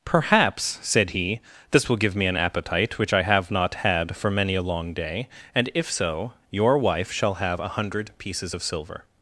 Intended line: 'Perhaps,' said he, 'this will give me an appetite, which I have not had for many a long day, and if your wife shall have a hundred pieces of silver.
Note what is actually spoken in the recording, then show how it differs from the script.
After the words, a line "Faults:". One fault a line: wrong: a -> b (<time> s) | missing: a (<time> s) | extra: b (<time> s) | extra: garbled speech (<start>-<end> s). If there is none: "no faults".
'Perhaps,' said he, 'this will give me an appetite, which I have not had for many a long day, and if so your wife shall have a hundred pieces of silver.
Faults:
extra: so (5.9 s)